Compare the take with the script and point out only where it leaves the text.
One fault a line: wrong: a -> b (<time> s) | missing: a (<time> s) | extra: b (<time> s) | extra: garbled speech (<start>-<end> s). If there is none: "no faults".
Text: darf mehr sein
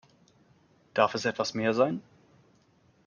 extra: es etwas (1.1 s)